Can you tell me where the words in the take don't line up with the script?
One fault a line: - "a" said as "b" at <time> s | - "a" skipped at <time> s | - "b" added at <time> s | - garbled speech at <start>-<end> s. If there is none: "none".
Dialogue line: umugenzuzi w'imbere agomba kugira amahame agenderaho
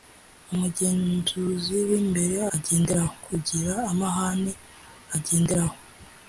- "agomba" said as "agenderaho" at 2.5 s